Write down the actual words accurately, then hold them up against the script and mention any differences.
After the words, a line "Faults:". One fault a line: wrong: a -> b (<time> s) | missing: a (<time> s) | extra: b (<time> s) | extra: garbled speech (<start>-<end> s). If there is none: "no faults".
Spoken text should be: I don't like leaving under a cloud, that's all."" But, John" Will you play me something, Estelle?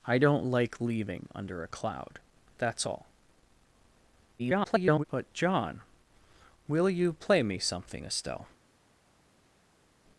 I don't like leaving under a cloud, that's all."" [garbled] But, John" Will you play me something, Estelle?
Faults:
extra: garbled speech (4.4-5.0 s)